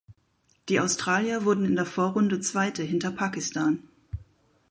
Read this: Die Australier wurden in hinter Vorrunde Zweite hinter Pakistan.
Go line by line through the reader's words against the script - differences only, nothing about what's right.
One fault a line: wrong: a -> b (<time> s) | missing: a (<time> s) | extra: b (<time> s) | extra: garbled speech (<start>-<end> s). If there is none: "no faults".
wrong: hinter -> der (1.8 s)